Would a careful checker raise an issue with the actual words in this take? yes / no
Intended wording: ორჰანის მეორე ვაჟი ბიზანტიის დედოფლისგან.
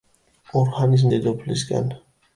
yes